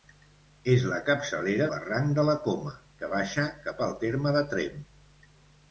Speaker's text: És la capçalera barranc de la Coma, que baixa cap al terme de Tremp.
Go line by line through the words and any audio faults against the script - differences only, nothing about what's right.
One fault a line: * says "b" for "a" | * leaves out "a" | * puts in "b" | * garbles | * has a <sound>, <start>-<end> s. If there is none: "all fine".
all fine